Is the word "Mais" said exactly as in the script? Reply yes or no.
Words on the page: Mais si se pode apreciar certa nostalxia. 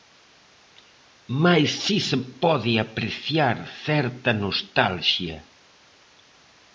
yes